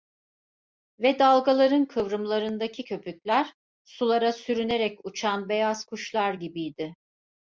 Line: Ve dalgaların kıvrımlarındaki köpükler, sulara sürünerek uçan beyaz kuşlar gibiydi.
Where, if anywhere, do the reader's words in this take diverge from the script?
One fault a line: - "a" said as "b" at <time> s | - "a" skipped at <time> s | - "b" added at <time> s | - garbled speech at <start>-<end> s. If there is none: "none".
none